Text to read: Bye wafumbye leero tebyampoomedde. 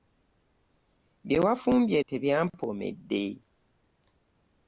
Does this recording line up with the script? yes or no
no